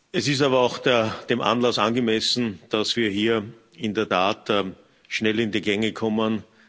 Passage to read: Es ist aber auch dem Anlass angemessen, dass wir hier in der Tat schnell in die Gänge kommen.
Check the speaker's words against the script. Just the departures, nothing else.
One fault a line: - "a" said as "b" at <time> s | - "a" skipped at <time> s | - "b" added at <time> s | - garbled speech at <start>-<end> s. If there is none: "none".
none